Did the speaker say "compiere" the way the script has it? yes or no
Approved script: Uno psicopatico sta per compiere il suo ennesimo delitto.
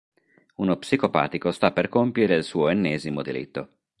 yes